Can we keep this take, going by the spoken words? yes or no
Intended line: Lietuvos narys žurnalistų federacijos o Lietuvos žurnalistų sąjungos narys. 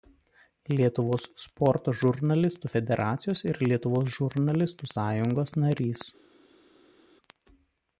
no